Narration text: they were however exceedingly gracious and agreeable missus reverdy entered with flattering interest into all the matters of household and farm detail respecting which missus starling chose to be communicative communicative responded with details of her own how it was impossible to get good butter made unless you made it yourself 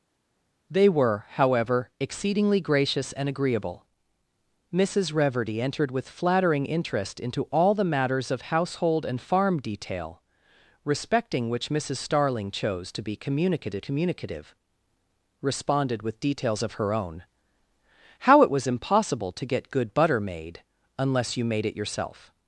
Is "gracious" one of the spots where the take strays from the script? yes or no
no